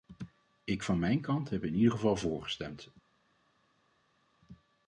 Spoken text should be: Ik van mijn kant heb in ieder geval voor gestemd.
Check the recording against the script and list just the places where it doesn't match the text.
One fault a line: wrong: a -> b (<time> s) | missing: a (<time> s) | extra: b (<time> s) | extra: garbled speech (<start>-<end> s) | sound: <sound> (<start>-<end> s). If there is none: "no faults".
no faults